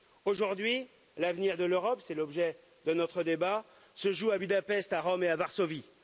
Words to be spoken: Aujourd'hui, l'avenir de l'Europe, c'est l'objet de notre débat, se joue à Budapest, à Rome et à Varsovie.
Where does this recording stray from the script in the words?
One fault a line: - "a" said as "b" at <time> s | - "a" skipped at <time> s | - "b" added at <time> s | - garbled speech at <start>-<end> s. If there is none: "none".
none